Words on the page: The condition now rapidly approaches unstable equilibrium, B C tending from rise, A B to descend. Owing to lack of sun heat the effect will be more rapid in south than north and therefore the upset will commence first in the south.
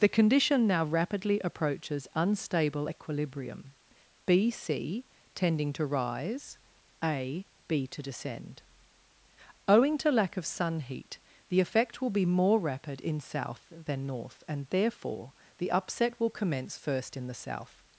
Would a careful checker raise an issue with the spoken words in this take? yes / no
yes